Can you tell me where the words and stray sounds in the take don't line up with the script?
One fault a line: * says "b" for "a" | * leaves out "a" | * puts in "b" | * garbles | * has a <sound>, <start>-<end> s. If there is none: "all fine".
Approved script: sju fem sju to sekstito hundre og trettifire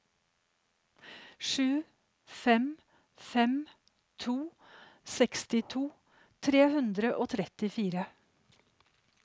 * says "fem" for "sju"
* puts in "tre"